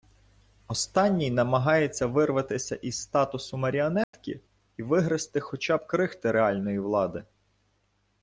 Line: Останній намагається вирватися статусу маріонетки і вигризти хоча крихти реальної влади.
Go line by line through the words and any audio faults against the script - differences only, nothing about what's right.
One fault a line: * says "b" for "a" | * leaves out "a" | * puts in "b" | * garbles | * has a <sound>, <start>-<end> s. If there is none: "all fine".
* puts in "із"
* has a dropout, 4.0-4.1 s
* puts in "б"